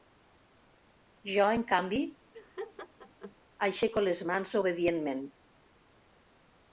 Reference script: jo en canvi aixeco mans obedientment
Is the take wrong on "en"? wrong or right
right